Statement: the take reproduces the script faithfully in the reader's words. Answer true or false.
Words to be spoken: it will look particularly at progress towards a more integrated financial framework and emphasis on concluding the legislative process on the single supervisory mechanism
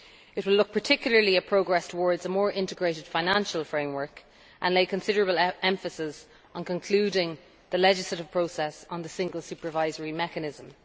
false